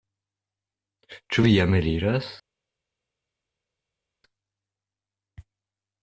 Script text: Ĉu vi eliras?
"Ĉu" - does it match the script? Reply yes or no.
yes